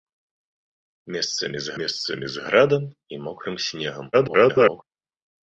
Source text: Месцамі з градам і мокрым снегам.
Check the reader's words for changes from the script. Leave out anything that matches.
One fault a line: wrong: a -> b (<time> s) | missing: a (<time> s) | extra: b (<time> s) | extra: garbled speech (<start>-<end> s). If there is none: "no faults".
extra: месцамі з (1.8 s)
extra: garbled speech (4.1-4.8 s)